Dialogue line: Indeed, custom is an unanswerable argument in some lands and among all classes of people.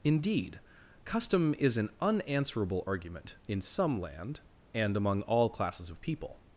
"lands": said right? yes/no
no